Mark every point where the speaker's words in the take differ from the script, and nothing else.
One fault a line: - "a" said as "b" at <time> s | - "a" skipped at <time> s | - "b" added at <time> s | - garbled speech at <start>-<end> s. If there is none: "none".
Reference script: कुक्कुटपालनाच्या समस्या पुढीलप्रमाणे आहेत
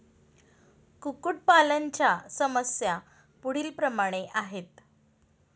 none